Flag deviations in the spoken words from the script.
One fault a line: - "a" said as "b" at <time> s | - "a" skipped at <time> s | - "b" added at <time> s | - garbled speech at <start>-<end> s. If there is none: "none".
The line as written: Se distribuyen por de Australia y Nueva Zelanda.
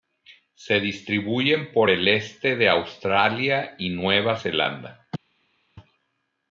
- "el este" added at 1.9 s